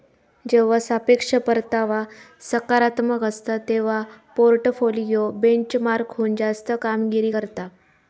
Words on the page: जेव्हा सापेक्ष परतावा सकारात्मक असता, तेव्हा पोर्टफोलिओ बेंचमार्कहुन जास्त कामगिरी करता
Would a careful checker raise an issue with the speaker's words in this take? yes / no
no